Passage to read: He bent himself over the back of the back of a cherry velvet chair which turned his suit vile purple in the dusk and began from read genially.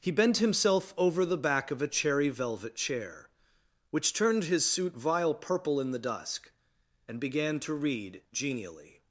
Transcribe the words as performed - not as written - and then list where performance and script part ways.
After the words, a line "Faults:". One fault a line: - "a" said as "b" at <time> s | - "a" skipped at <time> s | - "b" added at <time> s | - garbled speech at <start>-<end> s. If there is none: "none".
He bent himself over the back of a cherry velvet chair which turned his suit vile purple in the dusk and began to read genially.
Faults:
- "the back of" skipped at 1.8 s
- "from" said as "to" at 7.6 s